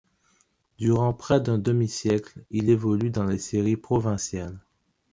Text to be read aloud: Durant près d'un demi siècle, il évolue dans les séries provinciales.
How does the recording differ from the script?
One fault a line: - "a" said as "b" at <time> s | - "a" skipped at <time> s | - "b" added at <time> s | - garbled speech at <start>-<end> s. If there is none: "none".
none